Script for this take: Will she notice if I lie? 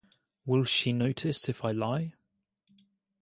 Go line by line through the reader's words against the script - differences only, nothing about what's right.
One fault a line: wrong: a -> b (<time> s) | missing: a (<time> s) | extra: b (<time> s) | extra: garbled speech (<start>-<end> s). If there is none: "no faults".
no faults